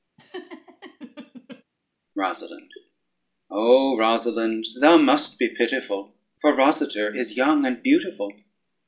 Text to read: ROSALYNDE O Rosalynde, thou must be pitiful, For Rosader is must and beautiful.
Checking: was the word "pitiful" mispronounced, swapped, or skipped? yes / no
no